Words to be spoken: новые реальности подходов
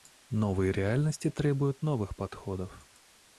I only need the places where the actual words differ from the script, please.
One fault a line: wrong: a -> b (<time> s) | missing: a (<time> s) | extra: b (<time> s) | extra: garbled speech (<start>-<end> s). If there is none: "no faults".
extra: требуют новых (1.3 s)